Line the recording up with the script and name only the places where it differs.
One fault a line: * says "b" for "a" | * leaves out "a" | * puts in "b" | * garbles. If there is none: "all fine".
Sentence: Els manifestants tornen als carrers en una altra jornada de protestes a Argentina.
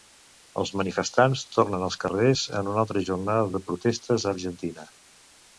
all fine